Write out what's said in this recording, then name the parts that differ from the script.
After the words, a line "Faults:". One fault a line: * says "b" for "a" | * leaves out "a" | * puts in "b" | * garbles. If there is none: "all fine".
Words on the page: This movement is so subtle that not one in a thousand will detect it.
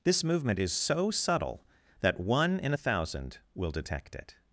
This movement is so subtle that one in a thousand will detect it.
Faults:
* leaves out "not"